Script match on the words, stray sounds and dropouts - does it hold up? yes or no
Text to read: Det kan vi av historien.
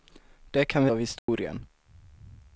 no